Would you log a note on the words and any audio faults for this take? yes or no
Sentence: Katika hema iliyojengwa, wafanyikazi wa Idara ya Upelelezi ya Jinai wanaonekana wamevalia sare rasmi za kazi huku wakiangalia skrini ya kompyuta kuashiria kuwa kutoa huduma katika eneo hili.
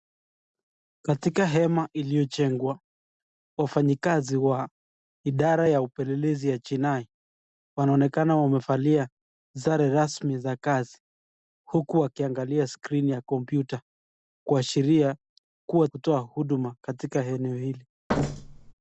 yes